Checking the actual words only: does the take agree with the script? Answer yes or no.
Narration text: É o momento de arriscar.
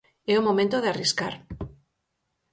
yes